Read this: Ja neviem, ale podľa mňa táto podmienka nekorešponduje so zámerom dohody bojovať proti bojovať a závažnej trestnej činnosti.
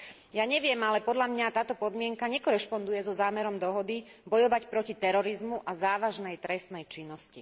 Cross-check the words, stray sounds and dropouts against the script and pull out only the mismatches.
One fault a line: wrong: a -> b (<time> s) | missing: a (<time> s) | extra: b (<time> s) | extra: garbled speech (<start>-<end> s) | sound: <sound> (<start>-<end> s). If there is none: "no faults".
wrong: bojovať -> terorizmu (5.0 s)